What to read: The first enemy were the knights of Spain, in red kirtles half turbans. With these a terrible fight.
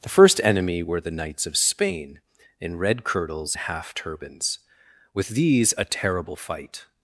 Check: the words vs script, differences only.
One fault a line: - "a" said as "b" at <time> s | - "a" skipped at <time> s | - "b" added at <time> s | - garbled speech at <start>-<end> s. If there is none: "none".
none